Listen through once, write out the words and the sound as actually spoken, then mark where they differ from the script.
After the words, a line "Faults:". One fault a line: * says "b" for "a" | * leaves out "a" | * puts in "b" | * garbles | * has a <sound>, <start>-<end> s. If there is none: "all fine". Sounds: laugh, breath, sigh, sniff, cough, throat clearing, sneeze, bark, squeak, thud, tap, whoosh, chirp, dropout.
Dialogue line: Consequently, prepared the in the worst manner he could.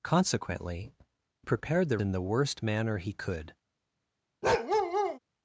Consequently, prepared the in the worst manner he could.
Faults:
* has a bark, 4.4-5.2 s